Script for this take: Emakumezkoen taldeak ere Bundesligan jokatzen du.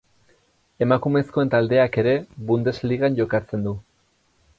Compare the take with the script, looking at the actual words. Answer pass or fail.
pass